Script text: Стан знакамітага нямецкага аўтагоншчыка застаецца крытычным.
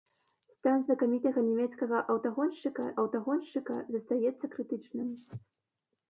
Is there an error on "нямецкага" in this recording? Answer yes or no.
no